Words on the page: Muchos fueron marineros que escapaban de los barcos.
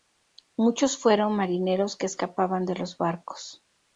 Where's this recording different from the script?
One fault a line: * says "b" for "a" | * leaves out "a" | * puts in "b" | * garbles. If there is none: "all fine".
all fine